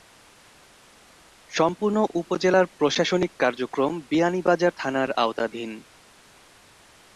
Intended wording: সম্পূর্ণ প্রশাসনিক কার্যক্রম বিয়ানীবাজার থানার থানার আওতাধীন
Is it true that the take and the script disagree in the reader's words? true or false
true